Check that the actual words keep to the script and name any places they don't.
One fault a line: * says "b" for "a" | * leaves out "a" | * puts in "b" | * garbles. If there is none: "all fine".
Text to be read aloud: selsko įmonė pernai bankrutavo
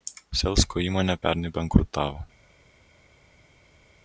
all fine